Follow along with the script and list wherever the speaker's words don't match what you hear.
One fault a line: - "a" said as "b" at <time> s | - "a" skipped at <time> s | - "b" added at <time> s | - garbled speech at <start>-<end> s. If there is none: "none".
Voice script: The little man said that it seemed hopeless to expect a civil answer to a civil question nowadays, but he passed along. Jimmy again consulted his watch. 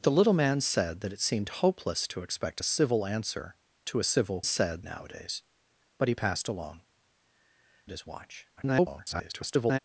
- "question" said as "said" at 4.4 s
- "Jimmy again consulted" skipped at 6.8 s
- garbled speech at 8.6-9.8 s